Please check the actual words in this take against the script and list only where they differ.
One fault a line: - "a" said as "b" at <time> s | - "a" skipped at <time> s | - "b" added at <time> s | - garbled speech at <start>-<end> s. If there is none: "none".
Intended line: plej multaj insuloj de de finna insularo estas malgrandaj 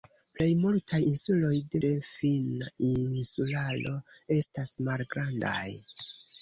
none